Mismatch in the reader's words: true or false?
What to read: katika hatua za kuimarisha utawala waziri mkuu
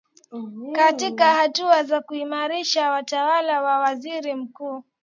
true